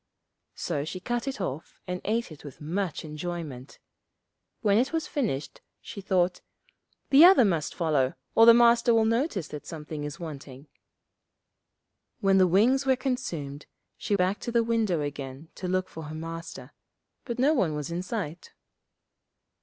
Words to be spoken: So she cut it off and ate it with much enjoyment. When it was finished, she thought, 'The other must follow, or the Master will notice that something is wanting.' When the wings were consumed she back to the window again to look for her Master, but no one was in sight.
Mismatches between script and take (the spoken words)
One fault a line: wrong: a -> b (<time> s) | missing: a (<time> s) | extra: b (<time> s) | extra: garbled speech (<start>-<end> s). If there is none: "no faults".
no faults